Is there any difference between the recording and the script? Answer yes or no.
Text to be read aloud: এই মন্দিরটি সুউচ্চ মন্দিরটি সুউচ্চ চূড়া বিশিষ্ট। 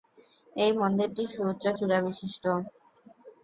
yes